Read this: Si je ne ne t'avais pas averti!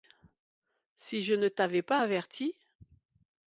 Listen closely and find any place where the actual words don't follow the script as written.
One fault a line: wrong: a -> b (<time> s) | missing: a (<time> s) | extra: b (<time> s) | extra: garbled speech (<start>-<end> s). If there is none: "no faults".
missing: ne (1.5 s)